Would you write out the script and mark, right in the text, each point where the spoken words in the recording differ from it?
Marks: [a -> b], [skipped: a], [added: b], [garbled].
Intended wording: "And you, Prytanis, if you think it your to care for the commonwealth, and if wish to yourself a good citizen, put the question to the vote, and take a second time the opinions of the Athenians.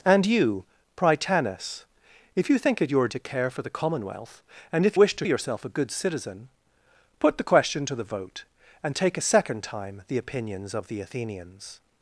"And you, Prytanis, if you think it your to care for the commonwealth, and if wish to yourself a good citizen, put the question to the vote, and take a second time the opinions of the Athenians.